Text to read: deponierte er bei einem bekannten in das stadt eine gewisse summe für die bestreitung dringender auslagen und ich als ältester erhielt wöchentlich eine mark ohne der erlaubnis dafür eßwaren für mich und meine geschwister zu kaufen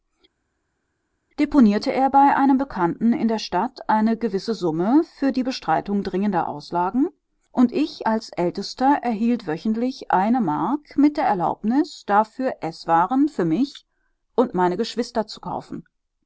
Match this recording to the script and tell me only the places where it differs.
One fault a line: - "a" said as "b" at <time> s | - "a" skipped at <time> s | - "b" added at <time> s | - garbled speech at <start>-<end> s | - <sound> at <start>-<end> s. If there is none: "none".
- "das" said as "der" at 3.3 s
- "ohne" said as "mit" at 11.0 s